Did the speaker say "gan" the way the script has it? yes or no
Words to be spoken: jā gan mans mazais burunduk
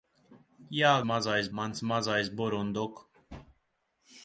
no